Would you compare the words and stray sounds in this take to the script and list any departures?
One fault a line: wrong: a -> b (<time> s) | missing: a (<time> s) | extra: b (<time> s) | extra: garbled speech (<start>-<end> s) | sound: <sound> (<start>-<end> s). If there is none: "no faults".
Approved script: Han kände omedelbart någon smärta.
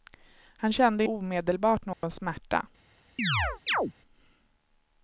sound: dropout (1.9-2.0 s)
sound: chirp (3.2-3.9 s)